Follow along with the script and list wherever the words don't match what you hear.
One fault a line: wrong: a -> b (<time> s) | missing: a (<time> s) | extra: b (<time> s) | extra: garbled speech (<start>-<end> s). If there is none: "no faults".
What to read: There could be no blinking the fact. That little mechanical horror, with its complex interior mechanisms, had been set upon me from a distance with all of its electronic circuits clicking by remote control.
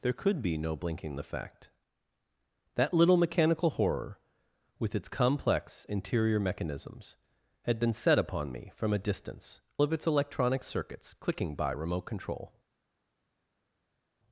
missing: with all (9.6 s)